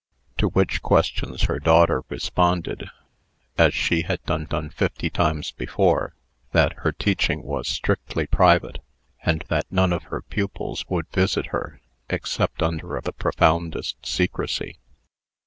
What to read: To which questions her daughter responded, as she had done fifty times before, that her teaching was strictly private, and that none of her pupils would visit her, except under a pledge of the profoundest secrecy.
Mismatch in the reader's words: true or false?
true